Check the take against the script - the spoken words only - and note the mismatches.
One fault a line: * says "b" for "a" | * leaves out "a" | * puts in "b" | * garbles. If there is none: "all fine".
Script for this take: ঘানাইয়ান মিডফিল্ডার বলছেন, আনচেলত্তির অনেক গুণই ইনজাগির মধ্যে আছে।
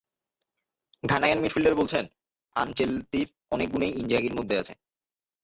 all fine